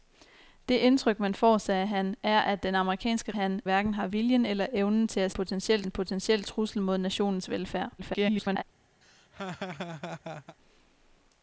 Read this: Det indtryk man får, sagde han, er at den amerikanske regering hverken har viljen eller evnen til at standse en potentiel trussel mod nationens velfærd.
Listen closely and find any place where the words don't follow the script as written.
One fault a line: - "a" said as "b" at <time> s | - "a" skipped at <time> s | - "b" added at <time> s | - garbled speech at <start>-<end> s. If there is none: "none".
- "regering" said as "han" at 3.3 s
- "standse" said as "potentiel" at 5.3 s
- garbled speech at 8.0-8.6 s